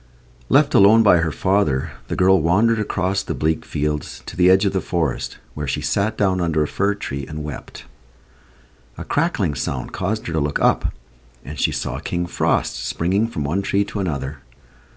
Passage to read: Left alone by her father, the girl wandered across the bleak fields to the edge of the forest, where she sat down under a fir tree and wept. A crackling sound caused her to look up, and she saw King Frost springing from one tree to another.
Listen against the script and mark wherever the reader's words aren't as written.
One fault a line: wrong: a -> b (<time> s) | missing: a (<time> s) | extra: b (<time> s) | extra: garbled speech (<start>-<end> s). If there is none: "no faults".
no faults